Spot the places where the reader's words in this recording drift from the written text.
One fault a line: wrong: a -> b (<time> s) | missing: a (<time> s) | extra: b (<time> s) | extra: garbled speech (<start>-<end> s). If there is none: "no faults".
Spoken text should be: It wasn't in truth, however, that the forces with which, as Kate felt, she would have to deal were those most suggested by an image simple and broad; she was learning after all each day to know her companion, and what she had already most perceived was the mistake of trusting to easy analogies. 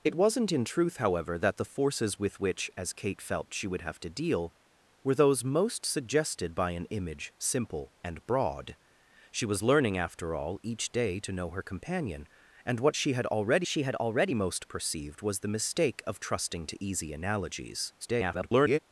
extra: she had already (13.7 s)
extra: garbled speech (18.0-18.8 s)